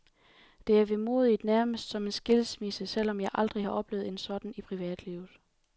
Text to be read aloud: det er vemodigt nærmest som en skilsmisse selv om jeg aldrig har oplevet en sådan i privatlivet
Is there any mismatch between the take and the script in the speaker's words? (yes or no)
no